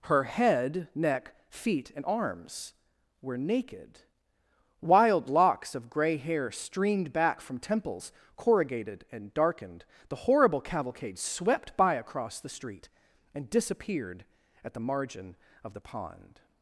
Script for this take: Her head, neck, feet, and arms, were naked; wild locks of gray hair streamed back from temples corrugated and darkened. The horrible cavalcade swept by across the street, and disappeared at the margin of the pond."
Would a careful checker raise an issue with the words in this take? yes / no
no